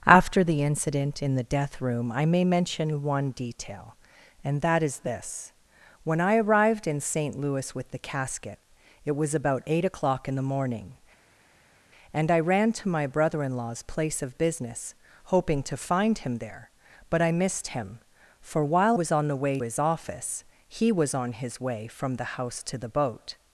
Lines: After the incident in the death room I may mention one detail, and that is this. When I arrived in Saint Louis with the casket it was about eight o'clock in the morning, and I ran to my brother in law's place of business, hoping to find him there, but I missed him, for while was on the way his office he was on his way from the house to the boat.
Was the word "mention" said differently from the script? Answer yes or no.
no